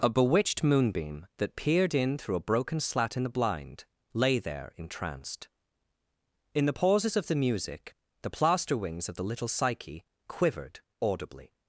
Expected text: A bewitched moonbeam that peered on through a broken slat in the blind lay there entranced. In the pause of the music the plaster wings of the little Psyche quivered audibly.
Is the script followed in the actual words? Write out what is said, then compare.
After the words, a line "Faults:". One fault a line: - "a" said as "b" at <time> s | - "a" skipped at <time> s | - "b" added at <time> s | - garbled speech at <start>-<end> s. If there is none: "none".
A bewitched moonbeam that peered in through a broken slat in the blind lay there entranced. In the pauses of the music the plaster wings of the little Psyche quivered audibly.
Faults:
- "on" said as "in" at 1.9 s
- "pause" said as "pauses" at 6.7 s